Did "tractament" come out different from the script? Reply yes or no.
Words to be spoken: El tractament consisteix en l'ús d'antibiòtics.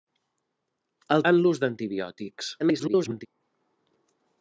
yes